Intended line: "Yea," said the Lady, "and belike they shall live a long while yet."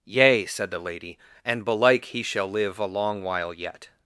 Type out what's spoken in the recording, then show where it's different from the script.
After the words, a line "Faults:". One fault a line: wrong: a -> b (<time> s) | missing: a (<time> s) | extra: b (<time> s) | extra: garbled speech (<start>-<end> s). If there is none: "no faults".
"Yea," said the Lady, "and belike he shall live a long while yet."
Faults:
wrong: they -> he (2.0 s)